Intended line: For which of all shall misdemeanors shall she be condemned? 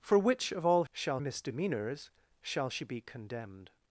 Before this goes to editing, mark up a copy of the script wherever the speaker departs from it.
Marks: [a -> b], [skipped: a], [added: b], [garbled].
For which of all shall misdemeanors shall she be condemned?